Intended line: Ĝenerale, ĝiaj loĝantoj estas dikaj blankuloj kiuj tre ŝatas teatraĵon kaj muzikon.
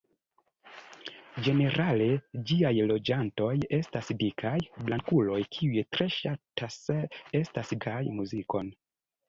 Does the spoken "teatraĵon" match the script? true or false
false